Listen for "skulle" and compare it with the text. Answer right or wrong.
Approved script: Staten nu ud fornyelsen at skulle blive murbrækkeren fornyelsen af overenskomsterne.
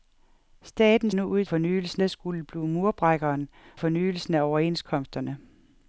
right